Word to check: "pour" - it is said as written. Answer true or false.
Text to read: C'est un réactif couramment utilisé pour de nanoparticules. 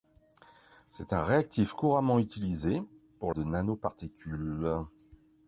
true